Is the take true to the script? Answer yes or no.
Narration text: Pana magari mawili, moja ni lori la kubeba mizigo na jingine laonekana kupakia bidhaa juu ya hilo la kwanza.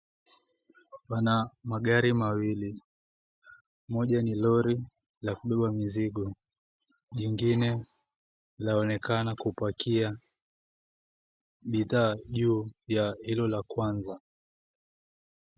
no